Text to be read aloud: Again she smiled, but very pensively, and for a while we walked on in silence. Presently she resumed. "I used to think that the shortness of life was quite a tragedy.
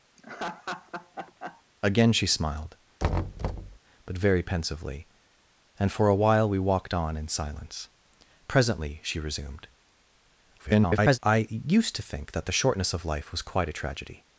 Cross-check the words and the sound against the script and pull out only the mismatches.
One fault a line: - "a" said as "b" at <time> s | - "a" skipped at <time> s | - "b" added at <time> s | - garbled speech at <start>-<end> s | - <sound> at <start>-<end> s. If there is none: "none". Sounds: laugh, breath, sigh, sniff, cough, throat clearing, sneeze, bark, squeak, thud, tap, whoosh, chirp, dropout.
- laugh at 0.2-1.6 s
- thud at 3.0-3.8 s
- garbled speech at 10.6-11.2 s